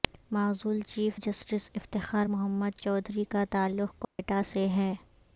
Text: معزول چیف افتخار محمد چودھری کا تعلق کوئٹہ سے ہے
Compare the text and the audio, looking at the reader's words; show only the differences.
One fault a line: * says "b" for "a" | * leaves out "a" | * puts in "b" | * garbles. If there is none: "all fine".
* puts in "جسٹس"